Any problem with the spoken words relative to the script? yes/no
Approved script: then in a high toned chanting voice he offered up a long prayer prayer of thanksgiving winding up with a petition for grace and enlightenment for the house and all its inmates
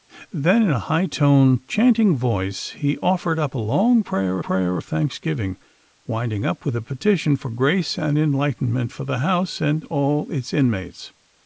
no